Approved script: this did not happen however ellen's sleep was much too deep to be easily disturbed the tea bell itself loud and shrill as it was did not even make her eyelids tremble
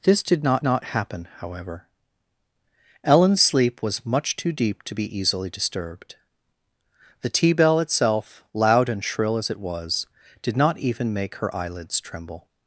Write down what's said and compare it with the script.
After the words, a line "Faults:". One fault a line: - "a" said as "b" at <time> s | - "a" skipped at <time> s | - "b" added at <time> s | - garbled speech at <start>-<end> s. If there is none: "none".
this did not not happen however ellen's sleep was much too deep to be easily disturbed the tea bell itself loud and shrill as it was did not even make her eyelids tremble
Faults:
- "not" added at 0.6 s